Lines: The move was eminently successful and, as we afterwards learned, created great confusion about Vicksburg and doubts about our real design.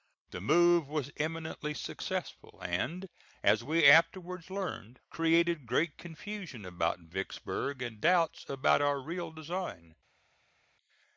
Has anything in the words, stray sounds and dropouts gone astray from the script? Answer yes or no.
no